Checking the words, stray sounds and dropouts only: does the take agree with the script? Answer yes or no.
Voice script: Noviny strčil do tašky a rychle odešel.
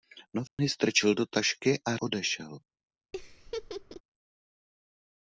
no